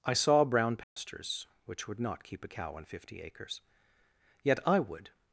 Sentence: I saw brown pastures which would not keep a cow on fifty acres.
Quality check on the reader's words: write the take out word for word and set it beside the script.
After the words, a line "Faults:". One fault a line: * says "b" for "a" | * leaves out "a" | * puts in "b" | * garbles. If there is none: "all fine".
I saw brown pastures which would not keep a cow on fifty acres. Yet I would
Faults:
* puts in "Yet I would"